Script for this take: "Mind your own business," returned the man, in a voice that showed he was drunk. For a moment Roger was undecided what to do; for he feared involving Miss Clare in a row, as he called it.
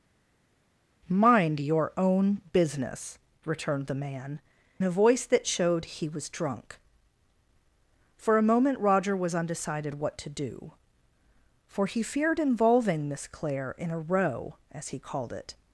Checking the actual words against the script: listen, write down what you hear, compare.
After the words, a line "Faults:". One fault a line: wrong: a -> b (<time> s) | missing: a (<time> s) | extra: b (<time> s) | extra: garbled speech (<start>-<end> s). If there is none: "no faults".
"Mind your own business," returned the man, a voice that showed he was drunk. For a moment Roger was undecided what to do; for he feared involving Miss Clare in a row, as he called it.
Faults:
missing: in (4.4 s)